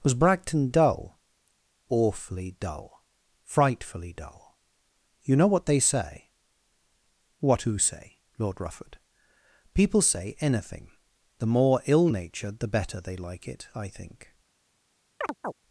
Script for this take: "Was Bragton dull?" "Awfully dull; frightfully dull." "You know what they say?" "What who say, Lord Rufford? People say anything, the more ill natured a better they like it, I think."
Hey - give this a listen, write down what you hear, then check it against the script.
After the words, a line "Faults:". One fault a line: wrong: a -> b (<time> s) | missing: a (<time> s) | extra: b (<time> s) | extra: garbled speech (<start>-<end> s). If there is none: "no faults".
"Was Bragton dull?" "Awfully dull; frightfully dull." "You know what they say?" "What who say, Lord Rufford? People say anything, the more ill natured the better they like it, I think."
Faults:
wrong: a -> the (12.6 s)